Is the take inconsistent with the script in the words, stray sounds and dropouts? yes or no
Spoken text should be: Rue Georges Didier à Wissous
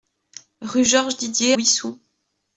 yes